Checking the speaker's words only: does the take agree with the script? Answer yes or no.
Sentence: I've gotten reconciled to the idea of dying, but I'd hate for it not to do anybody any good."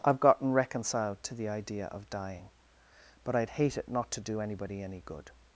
no